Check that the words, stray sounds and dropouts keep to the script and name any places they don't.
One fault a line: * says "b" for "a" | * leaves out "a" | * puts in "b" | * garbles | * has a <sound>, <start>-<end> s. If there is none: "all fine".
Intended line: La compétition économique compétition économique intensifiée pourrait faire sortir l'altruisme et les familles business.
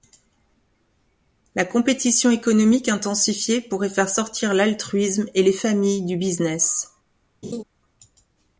* leaves out "compétition économique"
* puts in "du"
* has a laugh, 7.4-7.6 s